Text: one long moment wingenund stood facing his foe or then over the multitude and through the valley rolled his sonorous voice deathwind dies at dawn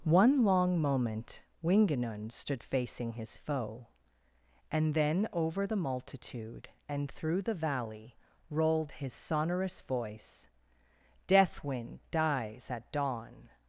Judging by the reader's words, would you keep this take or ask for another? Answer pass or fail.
fail